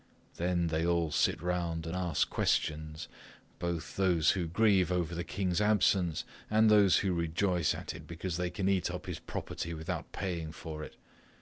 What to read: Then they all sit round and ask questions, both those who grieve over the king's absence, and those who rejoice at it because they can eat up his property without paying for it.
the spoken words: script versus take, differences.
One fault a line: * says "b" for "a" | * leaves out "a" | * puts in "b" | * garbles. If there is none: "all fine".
all fine